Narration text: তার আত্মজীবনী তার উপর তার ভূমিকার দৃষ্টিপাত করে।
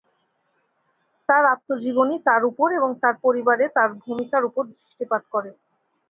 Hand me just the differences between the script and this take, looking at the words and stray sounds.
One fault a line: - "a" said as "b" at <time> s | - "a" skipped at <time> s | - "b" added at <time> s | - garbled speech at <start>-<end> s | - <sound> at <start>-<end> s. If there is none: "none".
- "এবং" added at 2.8 s
- "পরিবারে তার" added at 3.2 s
- "উপর" added at 4.5 s